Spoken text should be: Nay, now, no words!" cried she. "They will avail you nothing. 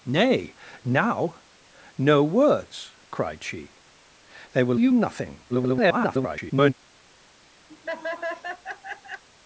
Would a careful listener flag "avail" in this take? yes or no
yes